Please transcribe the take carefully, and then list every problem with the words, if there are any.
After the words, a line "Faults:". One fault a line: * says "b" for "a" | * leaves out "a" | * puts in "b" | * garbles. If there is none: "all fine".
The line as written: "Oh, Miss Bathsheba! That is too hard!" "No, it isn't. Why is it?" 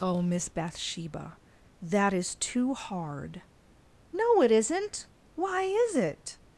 "Oh, Miss Bathsheba! That is too hard!" "No, it isn't. Why is it?"
Faults:
all fine